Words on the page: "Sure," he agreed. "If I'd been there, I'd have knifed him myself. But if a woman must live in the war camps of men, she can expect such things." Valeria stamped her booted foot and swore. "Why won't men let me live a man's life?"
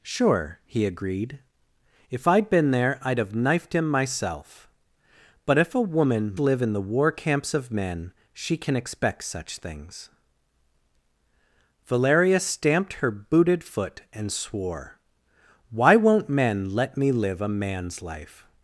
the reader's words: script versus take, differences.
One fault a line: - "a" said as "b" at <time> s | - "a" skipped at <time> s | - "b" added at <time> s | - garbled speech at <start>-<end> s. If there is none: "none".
- "must" skipped at 6.3 s